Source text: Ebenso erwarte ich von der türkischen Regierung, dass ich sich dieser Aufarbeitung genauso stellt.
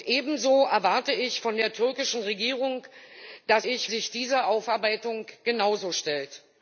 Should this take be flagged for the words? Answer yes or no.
no